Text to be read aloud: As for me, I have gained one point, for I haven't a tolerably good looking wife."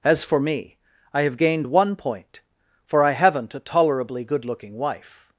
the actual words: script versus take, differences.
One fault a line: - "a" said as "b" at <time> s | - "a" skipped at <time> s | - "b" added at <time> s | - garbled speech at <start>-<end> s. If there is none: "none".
none